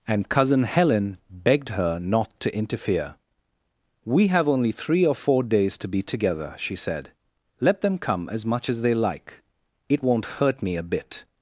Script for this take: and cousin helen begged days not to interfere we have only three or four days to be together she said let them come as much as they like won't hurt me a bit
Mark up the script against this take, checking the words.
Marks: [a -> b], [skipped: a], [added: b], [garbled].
and cousin helen begged [days -> her] not to interfere we have only three or four days to be together she said let them come as much as they like [added: it] won't hurt me a bit